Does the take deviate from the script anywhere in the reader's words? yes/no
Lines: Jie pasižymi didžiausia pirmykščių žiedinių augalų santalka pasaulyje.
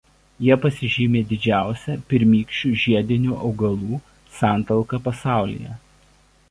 no